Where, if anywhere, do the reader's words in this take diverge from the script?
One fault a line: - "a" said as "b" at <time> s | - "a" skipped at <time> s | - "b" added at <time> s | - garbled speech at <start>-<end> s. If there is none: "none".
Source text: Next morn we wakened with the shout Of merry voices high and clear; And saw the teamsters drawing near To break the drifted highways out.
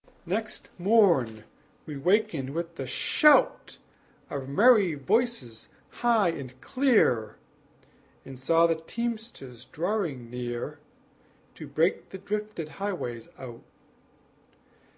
none